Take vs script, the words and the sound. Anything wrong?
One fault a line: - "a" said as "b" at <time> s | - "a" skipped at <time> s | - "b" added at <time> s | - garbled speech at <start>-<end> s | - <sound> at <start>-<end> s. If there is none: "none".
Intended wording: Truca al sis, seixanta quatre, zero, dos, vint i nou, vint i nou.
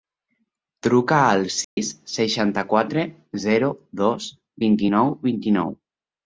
- dropout at 1.6-1.8 s